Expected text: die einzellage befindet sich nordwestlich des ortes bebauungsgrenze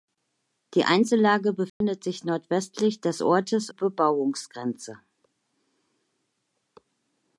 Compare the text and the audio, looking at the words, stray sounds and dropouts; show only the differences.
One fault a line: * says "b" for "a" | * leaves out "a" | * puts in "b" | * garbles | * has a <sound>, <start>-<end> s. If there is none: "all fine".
* has a dropout, 1.7-1.8 s